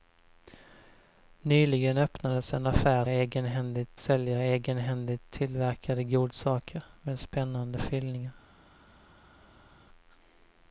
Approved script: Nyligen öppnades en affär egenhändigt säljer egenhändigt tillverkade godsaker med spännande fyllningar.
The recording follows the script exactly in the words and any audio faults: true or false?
true